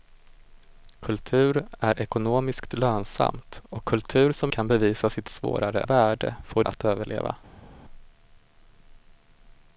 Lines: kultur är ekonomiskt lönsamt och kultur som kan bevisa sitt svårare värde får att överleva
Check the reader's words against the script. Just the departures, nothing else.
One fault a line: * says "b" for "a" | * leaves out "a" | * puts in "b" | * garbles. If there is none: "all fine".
all fine